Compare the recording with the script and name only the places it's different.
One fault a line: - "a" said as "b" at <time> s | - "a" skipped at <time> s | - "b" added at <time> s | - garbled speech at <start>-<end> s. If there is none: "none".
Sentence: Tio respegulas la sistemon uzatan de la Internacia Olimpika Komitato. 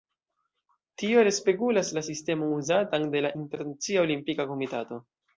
none